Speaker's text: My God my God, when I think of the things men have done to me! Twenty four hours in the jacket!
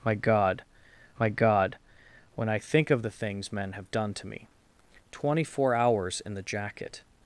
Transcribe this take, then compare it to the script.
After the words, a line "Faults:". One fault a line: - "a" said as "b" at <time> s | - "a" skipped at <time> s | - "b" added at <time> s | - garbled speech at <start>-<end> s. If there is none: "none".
My God my God, when I think of the things men have done to me! Twenty four hours in the jacket!
Faults:
none